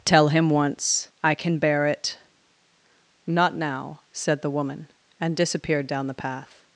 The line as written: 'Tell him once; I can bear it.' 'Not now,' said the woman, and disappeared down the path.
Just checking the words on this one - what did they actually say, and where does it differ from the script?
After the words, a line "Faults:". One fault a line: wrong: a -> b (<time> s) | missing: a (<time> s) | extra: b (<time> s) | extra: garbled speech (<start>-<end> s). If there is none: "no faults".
'Tell him once; I can bear it.' 'Not now,' said the woman, and disappeared down the path.
Faults:
no faults